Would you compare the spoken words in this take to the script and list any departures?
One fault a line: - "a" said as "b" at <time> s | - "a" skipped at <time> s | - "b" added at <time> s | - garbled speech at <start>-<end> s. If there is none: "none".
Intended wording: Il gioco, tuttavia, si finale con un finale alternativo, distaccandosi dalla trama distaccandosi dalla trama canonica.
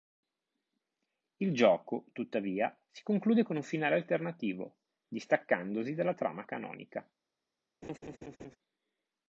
- "finale" said as "conclude" at 3.0 s
- "distaccandosi dalla trama" skipped at 6.4 s